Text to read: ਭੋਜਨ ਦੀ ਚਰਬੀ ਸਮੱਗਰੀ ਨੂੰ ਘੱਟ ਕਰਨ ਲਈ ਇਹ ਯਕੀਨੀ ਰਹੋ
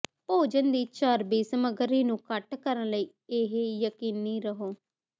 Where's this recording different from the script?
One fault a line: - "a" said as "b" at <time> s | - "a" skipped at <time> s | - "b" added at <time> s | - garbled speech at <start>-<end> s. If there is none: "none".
none